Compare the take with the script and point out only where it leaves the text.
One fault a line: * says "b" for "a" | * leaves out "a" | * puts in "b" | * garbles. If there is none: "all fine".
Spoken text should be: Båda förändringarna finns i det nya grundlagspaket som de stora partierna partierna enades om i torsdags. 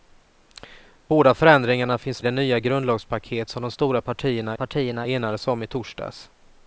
all fine